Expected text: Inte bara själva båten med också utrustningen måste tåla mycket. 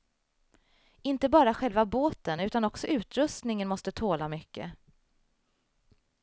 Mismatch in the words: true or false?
true